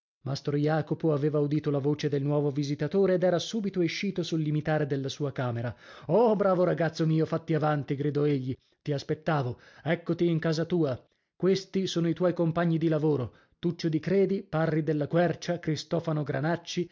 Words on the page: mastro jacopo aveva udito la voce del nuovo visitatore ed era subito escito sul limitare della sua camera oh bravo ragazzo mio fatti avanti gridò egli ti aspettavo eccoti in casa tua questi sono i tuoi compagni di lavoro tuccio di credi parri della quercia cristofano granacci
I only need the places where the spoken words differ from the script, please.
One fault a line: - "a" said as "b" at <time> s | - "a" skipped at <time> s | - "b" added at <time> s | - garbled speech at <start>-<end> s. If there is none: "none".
none